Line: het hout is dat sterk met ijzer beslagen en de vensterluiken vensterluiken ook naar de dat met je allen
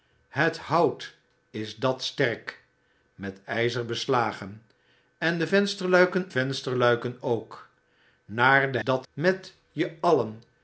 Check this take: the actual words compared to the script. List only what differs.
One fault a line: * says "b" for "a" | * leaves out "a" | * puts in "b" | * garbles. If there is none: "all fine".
all fine